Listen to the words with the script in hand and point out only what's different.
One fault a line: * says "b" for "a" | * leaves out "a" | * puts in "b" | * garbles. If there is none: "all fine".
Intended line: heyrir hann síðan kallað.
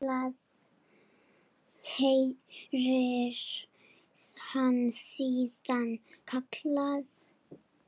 all fine